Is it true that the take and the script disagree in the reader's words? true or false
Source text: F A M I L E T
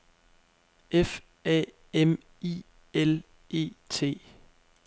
false